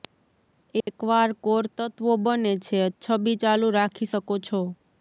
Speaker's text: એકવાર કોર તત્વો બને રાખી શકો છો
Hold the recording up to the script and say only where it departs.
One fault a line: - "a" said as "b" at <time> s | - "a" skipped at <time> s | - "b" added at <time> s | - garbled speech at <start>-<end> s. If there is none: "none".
- "છે છબી ચાલુ" added at 2.6 s